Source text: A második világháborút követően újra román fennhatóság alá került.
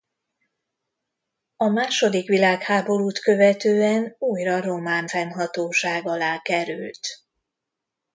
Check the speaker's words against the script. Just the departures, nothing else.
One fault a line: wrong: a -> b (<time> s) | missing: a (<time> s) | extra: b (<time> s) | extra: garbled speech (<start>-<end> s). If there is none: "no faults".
no faults